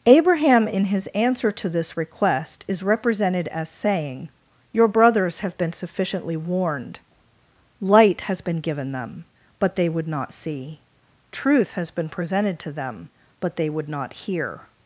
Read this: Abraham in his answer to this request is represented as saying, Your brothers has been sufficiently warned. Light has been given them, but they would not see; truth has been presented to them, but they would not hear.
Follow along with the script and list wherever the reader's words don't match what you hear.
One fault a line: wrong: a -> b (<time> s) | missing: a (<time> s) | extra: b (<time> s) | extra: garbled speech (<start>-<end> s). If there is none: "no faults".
wrong: has -> have (5.4 s)